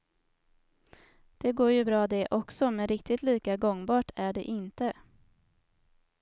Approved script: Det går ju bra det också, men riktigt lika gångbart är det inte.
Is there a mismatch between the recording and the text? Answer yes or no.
no